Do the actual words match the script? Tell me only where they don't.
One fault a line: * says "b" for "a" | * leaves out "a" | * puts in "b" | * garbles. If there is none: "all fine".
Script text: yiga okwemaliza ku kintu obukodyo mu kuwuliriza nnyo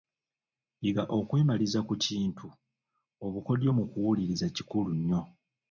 * puts in "kikulu"